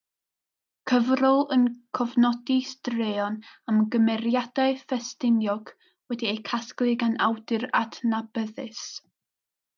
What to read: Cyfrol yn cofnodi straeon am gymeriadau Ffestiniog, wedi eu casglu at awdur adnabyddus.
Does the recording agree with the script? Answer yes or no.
no